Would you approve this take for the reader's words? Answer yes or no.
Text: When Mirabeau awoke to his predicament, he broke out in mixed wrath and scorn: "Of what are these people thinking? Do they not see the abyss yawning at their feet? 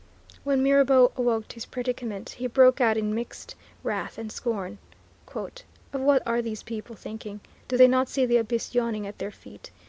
yes